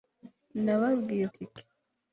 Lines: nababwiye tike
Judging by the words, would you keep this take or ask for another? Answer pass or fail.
pass